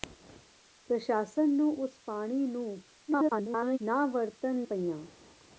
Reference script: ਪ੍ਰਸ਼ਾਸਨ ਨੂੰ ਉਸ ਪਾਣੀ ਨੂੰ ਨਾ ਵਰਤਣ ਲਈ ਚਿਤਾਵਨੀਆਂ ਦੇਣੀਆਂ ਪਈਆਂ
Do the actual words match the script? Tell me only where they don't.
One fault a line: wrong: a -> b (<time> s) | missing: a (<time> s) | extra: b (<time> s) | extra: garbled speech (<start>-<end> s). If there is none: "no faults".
extra: garbled speech (3.1-3.8 s)
missing: ਲਈ ਚਿਤਾਵਨੀਆਂ ਦੇਣੀਆਂ (4.7 s)